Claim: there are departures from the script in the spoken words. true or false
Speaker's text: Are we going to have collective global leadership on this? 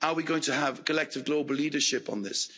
false